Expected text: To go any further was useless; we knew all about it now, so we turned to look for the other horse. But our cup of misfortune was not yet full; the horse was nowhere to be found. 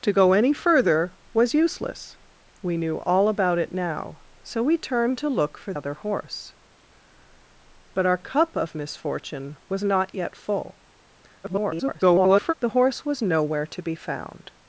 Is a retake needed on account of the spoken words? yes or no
yes